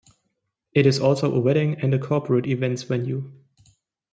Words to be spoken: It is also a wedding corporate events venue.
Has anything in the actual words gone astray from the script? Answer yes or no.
yes